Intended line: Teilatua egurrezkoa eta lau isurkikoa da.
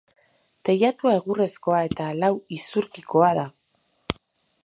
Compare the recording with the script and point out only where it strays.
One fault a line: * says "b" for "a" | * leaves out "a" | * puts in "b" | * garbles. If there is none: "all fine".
all fine